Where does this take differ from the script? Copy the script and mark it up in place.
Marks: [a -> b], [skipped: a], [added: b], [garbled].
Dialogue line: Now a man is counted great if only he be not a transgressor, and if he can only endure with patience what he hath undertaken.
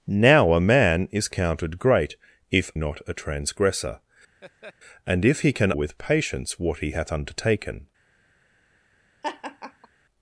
Now a man is counted great if [skipped: only he be] not a transgressor, and if he can [skipped: only endure] with patience what he hath undertaken.